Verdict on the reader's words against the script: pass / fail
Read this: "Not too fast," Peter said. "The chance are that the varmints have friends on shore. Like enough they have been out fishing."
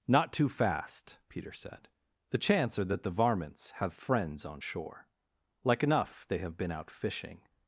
pass